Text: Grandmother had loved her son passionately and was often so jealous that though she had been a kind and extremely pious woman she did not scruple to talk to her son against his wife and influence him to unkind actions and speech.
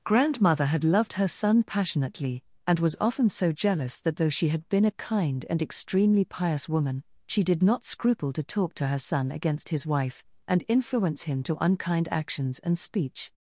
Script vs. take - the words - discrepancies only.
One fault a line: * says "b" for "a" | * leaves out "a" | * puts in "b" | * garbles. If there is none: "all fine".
all fine